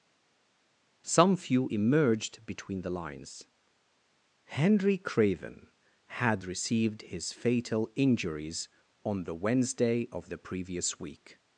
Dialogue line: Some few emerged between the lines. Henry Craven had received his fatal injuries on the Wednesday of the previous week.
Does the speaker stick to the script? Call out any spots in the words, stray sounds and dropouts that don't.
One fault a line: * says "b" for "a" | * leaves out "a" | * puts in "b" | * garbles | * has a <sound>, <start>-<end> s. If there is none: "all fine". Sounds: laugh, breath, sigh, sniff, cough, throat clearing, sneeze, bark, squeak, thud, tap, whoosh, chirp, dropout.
all fine